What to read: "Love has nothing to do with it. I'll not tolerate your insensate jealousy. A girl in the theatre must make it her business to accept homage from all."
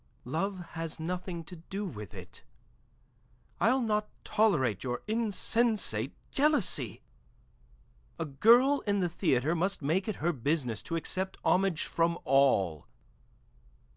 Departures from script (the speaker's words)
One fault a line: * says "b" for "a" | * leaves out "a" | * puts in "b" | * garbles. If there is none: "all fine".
all fine